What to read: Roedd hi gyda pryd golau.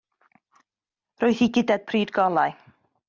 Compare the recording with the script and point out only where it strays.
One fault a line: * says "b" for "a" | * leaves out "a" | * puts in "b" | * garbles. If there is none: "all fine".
all fine